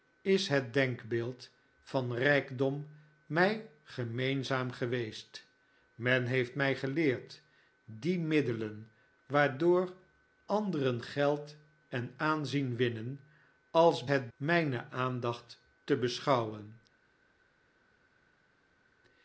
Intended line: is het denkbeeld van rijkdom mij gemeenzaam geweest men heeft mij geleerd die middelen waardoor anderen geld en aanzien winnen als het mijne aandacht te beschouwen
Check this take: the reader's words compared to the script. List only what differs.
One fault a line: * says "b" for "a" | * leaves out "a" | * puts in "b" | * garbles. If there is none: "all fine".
all fine